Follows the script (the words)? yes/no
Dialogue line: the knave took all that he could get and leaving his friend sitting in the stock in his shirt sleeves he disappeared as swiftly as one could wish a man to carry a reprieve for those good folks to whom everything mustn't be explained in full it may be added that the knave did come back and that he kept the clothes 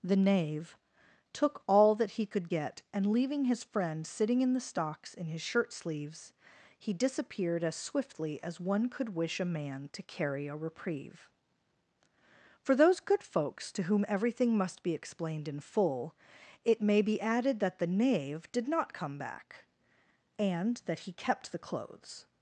no